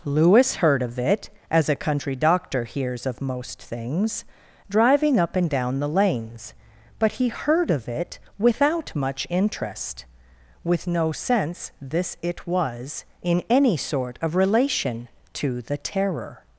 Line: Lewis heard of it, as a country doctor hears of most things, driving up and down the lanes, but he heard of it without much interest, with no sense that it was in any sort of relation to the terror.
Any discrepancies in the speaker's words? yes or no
yes